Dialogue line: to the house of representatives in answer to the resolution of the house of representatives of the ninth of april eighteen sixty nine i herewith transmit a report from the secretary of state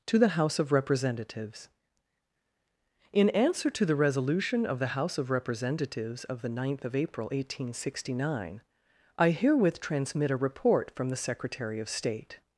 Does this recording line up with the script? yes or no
yes